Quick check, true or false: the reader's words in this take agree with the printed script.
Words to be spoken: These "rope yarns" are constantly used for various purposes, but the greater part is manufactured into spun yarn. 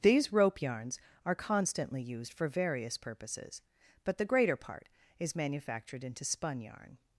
true